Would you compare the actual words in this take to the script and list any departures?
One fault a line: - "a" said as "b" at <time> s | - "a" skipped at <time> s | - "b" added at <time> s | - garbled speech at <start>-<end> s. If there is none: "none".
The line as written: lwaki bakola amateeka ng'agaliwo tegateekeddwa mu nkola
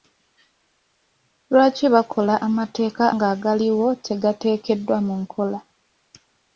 none